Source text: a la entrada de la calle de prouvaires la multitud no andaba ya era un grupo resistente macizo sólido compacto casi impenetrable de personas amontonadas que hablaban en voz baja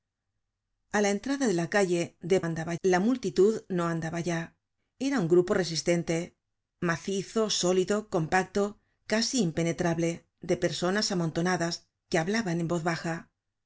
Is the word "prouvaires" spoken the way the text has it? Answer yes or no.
no